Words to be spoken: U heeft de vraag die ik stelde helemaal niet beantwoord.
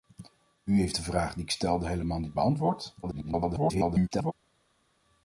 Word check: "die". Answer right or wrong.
right